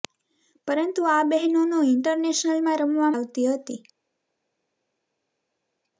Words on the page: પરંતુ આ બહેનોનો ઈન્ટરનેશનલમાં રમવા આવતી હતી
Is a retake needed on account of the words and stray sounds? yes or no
no